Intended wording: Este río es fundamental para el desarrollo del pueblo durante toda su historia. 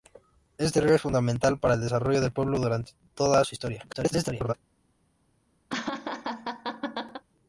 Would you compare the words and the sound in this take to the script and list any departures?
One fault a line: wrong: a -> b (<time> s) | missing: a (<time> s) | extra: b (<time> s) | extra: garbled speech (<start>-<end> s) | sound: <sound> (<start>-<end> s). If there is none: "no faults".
extra: garbled speech (3.9-4.5 s)
sound: laugh (5.7-7.2 s)